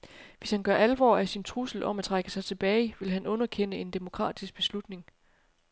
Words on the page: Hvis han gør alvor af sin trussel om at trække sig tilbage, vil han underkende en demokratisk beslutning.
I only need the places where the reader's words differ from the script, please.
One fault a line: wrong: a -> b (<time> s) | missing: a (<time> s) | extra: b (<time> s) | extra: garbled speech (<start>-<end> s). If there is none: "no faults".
no faults